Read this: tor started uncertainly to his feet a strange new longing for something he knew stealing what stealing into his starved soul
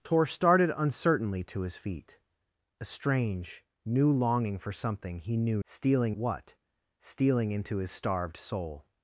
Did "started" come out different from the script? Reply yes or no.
no